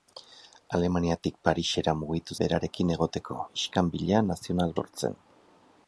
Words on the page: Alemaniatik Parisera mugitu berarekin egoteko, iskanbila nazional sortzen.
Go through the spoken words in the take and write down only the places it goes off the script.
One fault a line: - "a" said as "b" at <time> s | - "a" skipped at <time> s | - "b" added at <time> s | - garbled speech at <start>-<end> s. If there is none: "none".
none